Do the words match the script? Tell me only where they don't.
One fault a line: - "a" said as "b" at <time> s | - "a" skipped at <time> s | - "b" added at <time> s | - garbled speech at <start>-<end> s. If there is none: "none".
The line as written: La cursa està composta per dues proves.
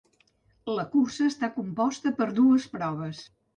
none